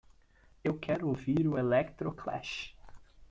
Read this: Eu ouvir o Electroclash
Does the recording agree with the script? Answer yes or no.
no